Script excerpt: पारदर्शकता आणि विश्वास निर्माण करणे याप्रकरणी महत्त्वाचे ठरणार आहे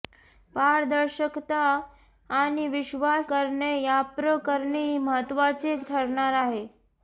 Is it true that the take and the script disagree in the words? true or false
true